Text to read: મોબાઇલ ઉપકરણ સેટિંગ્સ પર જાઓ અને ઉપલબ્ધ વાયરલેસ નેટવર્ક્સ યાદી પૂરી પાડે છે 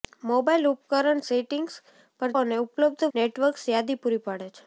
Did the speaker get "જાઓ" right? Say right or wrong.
wrong